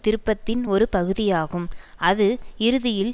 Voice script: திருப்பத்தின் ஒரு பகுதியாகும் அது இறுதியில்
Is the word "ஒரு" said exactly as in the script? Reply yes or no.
yes